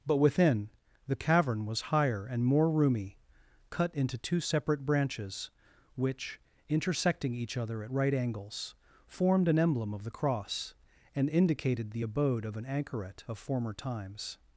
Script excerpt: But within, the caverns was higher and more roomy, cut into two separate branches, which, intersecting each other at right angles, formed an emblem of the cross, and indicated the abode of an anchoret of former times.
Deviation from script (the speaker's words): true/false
true